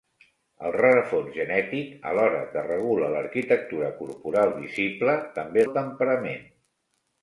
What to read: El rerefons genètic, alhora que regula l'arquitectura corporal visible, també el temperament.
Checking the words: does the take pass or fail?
pass